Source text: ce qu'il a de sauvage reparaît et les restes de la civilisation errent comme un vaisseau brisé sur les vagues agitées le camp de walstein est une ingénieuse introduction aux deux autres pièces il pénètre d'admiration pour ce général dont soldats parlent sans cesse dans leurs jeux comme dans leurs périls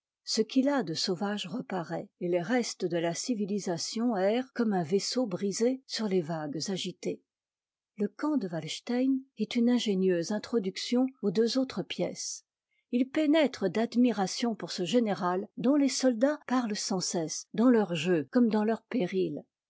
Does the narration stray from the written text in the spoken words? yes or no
yes